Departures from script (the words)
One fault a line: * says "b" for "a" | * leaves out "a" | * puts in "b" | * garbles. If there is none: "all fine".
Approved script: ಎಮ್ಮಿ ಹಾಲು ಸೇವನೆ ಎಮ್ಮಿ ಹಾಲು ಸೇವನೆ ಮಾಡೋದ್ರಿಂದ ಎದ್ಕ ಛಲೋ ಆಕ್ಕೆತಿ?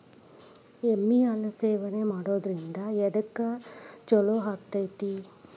* leaves out "ಎಮ್ಮಿ ಹಾಲು ಸೇವನೆ"